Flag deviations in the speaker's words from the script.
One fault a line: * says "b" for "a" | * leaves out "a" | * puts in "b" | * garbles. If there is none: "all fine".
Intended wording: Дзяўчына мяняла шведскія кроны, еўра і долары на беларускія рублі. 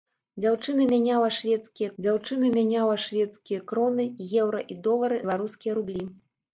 * puts in "дзяўчына мяняла шведскія"
* leaves out "на"